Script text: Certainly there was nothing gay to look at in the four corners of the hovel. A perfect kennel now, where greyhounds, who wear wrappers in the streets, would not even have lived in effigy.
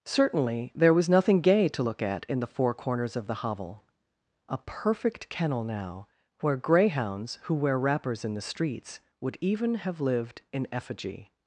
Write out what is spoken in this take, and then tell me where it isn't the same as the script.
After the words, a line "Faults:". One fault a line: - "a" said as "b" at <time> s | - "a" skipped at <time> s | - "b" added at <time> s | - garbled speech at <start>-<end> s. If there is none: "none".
Certainly there was nothing gay to look at in the four corners of the hovel. A perfect kennel now, where greyhounds, who wear wrappers in the streets, would even have lived in effigy.
Faults:
- "not" skipped at 9.4 s